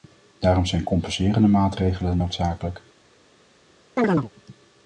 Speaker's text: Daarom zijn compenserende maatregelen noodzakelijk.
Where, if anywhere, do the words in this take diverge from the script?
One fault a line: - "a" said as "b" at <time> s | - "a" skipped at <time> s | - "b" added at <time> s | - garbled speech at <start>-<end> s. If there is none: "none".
none